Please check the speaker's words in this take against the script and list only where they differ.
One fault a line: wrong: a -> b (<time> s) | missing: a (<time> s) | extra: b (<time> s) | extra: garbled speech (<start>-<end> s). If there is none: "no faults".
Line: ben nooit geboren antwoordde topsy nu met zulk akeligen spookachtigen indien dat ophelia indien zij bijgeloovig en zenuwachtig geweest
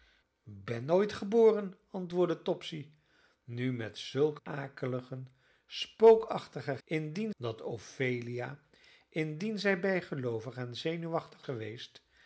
no faults